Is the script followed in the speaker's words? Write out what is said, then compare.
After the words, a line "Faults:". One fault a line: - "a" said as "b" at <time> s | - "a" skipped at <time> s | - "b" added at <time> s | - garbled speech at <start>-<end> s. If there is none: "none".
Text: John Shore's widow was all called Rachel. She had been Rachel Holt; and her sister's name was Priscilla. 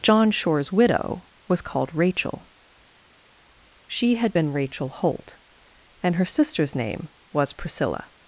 John Shore's widow was called Rachel. She had been Rachel Holt; and her sister's name was Priscilla.
Faults:
- "all" skipped at 1.6 s